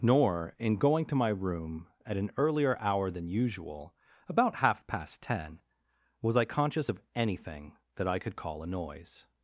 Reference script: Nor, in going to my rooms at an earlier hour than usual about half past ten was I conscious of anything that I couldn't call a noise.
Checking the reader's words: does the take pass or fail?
fail